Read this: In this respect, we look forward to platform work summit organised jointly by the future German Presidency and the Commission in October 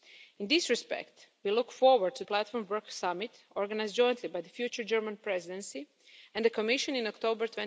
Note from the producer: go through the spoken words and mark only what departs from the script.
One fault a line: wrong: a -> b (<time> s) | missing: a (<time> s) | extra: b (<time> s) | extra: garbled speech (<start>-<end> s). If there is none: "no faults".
no faults